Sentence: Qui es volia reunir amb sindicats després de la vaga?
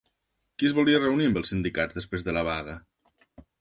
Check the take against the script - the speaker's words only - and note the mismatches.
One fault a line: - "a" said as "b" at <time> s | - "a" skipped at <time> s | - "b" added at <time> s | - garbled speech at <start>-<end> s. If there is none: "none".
- "els" added at 1.4 s